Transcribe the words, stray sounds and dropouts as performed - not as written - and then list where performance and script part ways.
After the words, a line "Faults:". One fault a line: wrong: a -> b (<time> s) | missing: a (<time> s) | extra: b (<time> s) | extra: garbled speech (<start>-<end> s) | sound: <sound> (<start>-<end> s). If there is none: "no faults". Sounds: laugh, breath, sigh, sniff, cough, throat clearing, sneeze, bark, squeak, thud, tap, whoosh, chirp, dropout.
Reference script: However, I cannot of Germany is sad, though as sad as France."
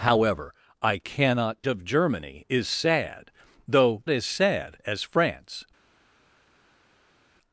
However, I cannot of Germany is sad, though as sad as France."
Faults:
no faults